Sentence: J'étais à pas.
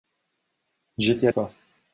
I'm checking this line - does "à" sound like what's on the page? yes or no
yes